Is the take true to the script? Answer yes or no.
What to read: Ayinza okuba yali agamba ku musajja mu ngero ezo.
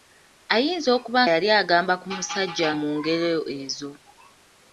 yes